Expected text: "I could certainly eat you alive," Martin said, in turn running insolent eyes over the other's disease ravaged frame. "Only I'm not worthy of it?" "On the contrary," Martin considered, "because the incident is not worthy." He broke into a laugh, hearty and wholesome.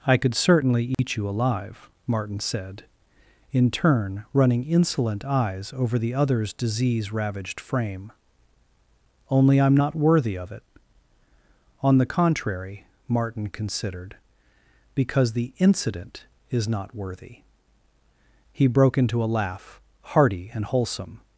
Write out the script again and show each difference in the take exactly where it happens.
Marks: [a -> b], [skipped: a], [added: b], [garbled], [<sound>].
"I could certainly eat [dropout] you alive," Martin said, in turn running insolent eyes over the other's disease ravaged frame. "Only I'm not worthy of it?" "On the contrary," Martin considered, "because the incident is not worthy." He broke into a laugh, hearty and wholesome.